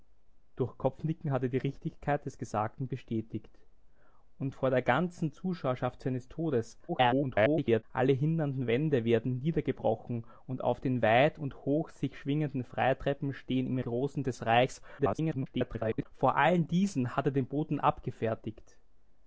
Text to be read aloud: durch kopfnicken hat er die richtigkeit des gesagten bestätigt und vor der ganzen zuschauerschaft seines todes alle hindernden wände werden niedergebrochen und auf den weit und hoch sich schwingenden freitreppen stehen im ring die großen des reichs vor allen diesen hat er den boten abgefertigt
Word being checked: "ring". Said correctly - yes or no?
no